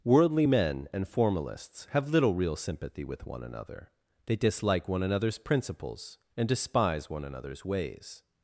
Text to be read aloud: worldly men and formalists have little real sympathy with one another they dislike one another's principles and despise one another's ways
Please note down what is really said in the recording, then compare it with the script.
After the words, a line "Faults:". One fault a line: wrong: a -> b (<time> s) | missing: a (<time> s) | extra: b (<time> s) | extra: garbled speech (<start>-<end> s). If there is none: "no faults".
worldly men and formalists have little real sympathy with one another they dislike one another's principles and despise one another's ways
Faults:
no faults